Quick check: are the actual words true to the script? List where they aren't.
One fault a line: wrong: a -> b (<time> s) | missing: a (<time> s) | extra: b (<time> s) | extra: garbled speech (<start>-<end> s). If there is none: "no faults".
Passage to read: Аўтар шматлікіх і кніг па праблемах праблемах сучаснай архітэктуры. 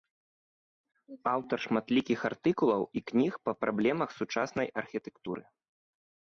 extra: артыкулаў (2.3 s)
missing: праблемах (4.1 s)